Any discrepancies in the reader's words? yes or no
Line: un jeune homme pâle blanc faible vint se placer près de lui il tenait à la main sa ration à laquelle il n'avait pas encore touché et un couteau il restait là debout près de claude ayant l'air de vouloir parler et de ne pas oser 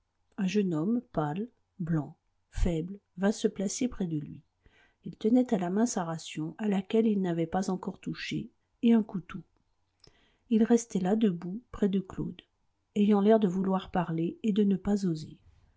no